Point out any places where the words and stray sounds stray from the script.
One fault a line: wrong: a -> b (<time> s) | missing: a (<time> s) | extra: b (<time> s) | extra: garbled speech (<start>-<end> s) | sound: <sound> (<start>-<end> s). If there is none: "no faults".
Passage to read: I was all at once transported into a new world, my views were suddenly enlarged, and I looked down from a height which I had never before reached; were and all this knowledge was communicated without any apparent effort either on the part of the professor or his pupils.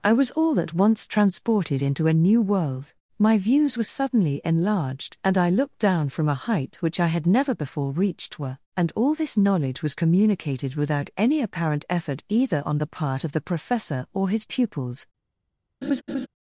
sound: laugh (15.8-16.3 s)